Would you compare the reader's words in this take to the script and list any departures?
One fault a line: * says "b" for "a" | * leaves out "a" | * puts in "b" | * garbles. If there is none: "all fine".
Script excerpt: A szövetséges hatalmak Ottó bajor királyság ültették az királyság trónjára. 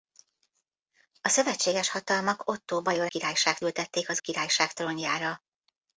all fine